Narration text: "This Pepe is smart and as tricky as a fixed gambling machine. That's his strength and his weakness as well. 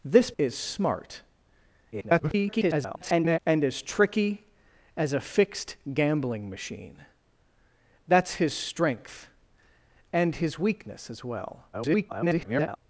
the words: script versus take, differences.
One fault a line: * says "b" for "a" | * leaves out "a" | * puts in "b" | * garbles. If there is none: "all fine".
* leaves out "Pepe"
* garbles
* garbles